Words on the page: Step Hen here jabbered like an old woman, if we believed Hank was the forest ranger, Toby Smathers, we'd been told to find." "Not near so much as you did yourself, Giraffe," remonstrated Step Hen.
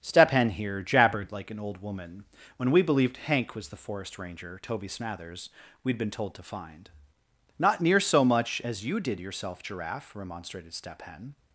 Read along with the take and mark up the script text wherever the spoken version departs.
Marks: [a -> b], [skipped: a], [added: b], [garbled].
Step Hen here jabbered like an old woman, [if -> when] we believed Hank was the forest ranger, Toby Smathers, we'd been told to find." "Not near so much as you did yourself, Giraffe," remonstrated Step Hen.